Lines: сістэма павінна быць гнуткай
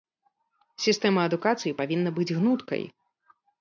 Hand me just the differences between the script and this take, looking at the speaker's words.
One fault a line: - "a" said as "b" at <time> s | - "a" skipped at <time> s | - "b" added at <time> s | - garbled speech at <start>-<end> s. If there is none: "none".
- "адукацыі" added at 1.3 s